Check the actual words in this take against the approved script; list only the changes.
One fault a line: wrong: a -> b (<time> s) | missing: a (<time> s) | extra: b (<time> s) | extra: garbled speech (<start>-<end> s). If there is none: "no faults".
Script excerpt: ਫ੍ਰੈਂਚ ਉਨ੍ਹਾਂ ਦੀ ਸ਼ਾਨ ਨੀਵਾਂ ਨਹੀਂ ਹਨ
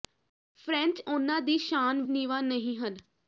no faults